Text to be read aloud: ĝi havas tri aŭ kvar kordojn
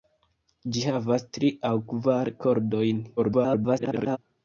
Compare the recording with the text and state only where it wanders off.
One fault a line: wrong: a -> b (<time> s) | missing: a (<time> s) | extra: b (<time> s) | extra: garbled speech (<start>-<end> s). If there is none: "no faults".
extra: garbled speech (3.2-4.2 s)